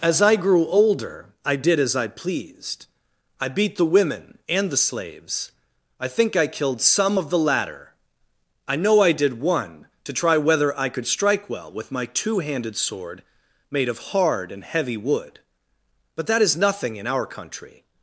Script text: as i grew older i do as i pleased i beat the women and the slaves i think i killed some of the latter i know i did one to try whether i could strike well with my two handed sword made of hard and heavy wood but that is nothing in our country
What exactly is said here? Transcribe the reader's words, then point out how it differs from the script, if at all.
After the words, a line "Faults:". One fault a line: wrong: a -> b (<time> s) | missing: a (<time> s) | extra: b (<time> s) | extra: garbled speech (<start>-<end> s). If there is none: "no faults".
as i grew older i did as i pleased i beat the women and the slaves i think i killed some of the latter i know i did one to try whether i could strike well with my two handed sword made of hard and heavy wood but that is nothing in our country
Faults:
wrong: do -> did (1.6 s)